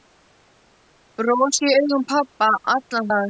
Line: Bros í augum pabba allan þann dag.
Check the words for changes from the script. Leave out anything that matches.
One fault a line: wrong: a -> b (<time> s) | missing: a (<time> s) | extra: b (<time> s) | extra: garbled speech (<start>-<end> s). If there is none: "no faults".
missing: þann (3.1 s)